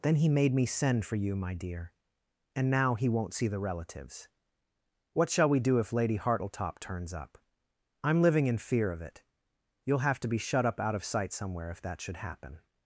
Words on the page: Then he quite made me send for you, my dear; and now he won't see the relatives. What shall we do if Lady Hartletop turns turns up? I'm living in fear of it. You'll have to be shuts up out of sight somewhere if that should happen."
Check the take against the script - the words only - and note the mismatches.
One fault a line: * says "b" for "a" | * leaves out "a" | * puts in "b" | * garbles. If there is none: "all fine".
* leaves out "quite"
* leaves out "turns"
* says "shut" for "shuts"